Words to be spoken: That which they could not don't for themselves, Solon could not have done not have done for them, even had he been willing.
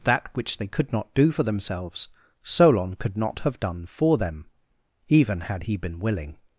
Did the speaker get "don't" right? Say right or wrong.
wrong